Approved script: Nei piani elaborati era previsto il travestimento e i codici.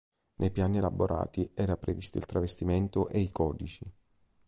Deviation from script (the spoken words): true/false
false